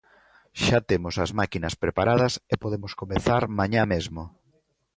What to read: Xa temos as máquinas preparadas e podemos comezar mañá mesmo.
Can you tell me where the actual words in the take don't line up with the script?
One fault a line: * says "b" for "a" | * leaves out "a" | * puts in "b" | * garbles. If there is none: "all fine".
all fine